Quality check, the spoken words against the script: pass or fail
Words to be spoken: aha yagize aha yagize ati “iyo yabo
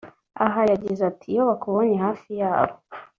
fail